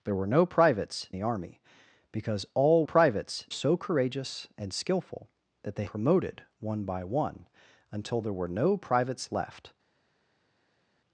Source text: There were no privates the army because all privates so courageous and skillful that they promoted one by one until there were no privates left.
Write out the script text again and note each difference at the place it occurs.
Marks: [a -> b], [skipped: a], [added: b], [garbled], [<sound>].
There were no privates the army because all privates so courageous and skillful that they promoted one by one until there were no privates left.